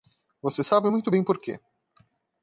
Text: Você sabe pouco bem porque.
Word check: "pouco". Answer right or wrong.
wrong